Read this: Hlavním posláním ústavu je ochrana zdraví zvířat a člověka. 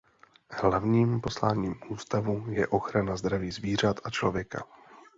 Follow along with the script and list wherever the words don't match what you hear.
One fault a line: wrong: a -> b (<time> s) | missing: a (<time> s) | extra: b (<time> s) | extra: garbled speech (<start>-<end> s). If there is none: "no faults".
no faults